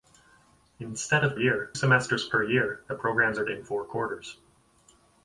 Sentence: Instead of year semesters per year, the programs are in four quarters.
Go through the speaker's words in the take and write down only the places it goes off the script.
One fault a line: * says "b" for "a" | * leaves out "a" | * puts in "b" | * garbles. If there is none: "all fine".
all fine